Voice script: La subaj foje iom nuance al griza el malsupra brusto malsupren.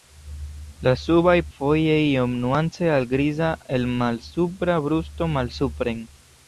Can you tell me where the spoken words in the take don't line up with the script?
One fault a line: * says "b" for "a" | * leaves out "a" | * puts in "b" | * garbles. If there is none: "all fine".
all fine